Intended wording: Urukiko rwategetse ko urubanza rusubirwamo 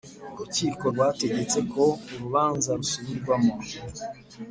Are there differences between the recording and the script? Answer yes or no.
no